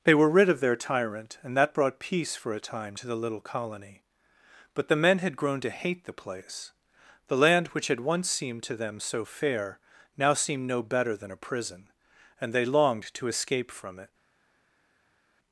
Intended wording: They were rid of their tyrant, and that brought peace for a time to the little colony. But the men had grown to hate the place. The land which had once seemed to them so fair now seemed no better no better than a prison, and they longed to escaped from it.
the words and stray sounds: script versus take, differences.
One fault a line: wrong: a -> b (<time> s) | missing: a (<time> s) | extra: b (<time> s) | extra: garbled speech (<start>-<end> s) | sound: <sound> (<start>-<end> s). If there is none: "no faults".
missing: no better (11.2 s)
wrong: escaped -> escape (13.3 s)